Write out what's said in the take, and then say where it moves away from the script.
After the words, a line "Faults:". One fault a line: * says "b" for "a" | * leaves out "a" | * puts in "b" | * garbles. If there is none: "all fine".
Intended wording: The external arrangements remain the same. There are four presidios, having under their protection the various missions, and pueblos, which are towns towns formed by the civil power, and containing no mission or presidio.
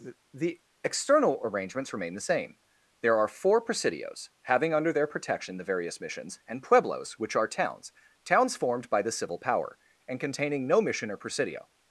The external arrangements remain the same. There are four presidios, having under their protection the various missions, and pueblos, which are towns towns formed by the civil power, and containing no mission or presidio.
Faults:
all fine